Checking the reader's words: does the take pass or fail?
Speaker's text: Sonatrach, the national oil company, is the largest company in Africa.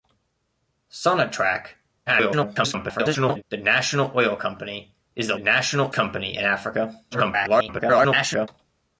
fail